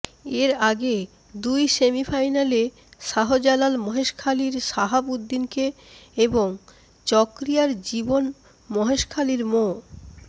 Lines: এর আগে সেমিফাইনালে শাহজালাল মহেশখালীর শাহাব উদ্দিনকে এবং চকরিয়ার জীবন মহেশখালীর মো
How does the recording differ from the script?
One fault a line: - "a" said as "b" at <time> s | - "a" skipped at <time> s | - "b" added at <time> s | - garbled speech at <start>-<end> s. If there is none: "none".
- "দুই" added at 1.3 s